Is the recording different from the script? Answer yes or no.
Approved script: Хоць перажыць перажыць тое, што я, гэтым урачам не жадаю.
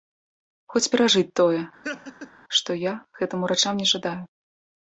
yes